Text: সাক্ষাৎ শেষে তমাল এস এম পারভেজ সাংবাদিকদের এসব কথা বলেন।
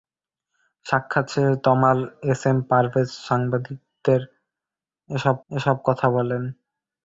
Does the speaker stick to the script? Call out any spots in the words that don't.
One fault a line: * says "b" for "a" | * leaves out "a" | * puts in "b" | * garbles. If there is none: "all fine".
* puts in "এসব"